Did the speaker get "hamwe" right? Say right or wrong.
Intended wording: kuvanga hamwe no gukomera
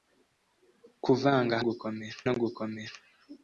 wrong